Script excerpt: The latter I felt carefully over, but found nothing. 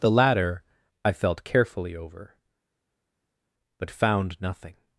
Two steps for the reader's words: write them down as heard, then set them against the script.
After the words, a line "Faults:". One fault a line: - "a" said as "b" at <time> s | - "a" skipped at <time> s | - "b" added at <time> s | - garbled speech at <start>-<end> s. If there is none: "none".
The latter I felt carefully over, but found nothing.
Faults:
none